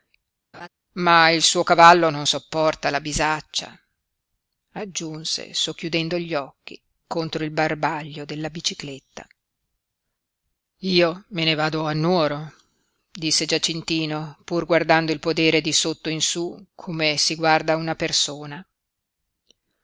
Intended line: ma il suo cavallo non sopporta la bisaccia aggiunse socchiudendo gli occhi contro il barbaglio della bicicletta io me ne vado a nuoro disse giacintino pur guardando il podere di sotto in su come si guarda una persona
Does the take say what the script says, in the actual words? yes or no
yes